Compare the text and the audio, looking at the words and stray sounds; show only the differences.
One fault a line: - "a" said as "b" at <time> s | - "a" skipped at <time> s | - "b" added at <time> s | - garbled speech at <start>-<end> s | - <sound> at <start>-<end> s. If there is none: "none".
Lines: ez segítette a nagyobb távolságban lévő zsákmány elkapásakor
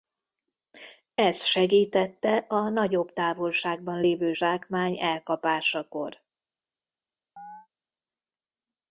- chirp at 7.4-7.7 s